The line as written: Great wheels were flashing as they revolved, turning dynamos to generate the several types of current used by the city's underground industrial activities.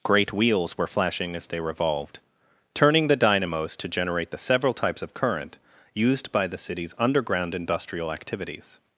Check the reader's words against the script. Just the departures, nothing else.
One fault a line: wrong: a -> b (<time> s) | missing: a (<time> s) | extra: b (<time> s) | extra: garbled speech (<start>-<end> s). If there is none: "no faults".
extra: the (3.1 s)